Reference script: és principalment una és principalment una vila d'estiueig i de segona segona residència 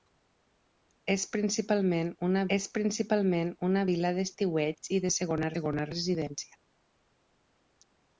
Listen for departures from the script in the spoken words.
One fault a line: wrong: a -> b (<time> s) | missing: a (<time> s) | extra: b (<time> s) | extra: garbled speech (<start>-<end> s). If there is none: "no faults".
no faults